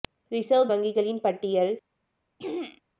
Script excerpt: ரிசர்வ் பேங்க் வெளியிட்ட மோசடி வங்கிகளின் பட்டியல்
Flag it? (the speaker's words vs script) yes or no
yes